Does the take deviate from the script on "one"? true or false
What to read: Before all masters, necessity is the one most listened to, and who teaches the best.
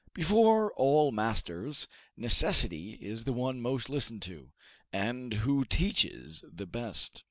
false